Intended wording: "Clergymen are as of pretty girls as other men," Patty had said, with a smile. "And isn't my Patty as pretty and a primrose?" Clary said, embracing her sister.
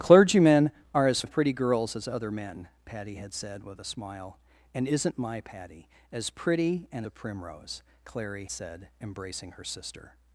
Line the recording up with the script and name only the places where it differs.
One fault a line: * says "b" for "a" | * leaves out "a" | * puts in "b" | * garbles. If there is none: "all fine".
all fine